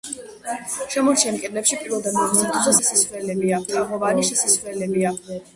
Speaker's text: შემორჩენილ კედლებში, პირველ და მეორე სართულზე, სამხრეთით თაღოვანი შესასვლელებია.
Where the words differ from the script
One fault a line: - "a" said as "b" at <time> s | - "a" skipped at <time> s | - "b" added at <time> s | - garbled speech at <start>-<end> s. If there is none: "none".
- "სამხრეთით" said as "შესასვლელებია" at 2.8 s